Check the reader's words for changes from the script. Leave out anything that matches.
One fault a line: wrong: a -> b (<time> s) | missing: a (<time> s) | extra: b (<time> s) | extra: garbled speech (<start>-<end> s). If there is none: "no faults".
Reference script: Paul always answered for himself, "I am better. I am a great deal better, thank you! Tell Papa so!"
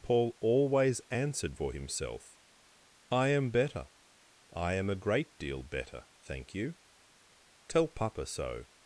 no faults